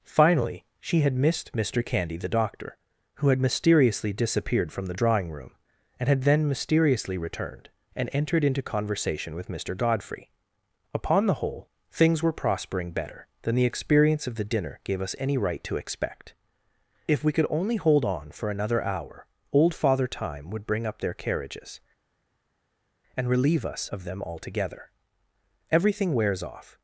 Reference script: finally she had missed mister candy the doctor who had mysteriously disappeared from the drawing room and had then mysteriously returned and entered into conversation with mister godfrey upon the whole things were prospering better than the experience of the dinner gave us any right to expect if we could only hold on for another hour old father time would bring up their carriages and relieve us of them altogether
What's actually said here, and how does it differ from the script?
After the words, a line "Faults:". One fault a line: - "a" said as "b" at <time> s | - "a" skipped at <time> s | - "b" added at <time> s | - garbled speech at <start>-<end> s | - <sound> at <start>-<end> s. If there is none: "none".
finally she had missed mister candy the doctor who had mysteriously disappeared from the drawing room and had then mysteriously returned and entered into conversation with mister godfrey upon the whole things were prospering better than the experience of the dinner gave us any right to expect if we could only hold on for another hour old father time would bring up their carriages and relieve us of them altogether everything wears off
Faults:
- "everything wears off" added at 25.7 s